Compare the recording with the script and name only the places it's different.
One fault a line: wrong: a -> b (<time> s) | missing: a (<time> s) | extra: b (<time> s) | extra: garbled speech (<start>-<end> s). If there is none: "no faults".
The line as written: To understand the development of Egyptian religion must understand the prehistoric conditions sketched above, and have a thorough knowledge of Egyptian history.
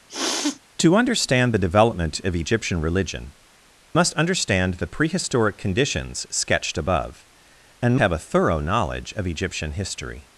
no faults